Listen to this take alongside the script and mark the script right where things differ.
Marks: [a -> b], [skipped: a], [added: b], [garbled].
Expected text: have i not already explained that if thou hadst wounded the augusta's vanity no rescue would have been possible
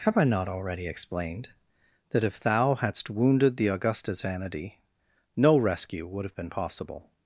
have i not already explained that if thou hadst wounded the augusta's vanity no rescue would have been possible